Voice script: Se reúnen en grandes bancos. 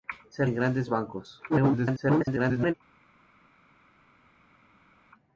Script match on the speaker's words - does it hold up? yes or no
no